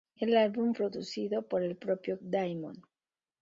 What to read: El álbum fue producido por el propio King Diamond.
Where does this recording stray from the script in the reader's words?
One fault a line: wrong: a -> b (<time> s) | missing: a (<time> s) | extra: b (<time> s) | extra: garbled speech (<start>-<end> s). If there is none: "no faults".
missing: fue (0.7 s)
missing: King (2.2 s)